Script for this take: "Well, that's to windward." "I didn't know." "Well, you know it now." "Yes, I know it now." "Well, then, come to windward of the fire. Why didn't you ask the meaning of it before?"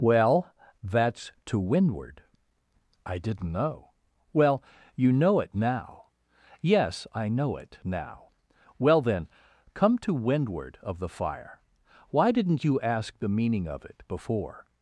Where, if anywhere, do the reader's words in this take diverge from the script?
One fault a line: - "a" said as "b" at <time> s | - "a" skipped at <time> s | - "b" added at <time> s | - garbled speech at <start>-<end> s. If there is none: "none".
none